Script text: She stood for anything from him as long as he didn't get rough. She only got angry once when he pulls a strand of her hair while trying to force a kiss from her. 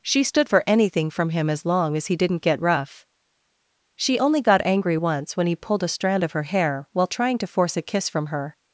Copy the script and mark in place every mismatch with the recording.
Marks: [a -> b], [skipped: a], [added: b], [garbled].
She stood for anything from him as long as he didn't get rough. She only got angry once when he [pulls -> pulled] a strand of her hair while trying to force a kiss from her.